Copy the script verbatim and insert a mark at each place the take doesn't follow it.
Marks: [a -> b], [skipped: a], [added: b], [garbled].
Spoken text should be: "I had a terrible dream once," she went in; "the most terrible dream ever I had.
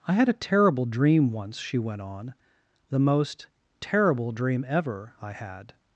"I had a terrible dream once," she went [in; -> on] "the most terrible dream ever I had.